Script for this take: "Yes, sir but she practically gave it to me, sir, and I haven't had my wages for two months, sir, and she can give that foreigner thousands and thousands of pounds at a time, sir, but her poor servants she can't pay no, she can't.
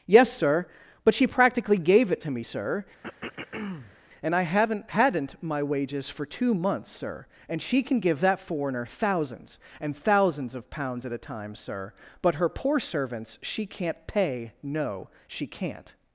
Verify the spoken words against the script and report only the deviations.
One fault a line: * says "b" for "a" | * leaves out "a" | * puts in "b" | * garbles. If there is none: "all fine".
* says "hadn't" for "had"